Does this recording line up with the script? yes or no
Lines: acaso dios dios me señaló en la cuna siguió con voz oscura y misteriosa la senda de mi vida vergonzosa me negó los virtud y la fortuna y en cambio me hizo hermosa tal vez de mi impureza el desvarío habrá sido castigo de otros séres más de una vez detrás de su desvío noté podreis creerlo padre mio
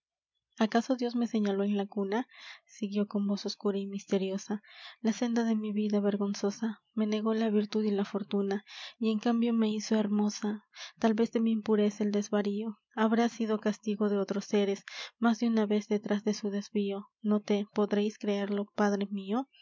no